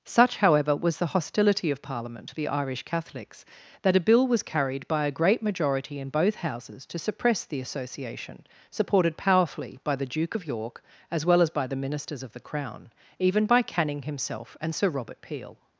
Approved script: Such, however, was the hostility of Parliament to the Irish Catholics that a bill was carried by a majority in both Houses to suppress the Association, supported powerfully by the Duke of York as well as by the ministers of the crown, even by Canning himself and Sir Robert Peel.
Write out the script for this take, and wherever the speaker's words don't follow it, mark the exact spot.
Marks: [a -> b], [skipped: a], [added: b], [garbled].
Such, however, was the hostility of Parliament to the Irish Catholics that a bill was carried by a [added: great] majority in both Houses to suppress the Association, supported powerfully by the Duke of York as well as by the ministers of the crown, even by Canning himself and Sir Robert Peel.